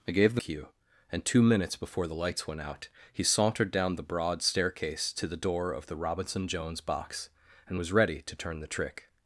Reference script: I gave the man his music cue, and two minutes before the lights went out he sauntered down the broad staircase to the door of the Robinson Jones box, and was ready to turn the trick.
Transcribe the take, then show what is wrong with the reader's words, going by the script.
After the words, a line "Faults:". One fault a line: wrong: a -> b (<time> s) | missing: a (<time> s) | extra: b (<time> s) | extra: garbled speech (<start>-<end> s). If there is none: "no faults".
I gave the cue, and two minutes before the lights went out he sauntered down the broad staircase to the door of the Robinson Jones box, and was ready to turn the trick.
Faults:
missing: man his music (0.4 s)